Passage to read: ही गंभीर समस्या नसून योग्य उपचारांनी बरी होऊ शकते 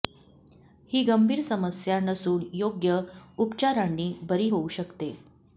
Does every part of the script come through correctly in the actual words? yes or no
yes